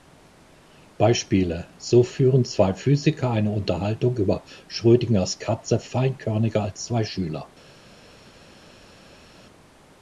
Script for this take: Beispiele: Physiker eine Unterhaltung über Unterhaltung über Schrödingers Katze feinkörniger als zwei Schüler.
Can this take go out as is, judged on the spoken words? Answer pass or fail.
fail